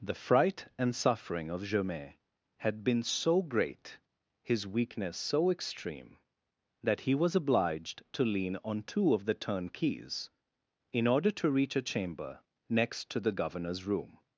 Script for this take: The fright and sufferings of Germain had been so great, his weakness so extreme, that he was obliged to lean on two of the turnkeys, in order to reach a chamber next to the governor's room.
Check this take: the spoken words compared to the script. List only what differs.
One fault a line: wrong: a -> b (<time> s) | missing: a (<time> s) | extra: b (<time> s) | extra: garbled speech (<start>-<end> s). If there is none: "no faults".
wrong: sufferings -> suffering (0.9 s)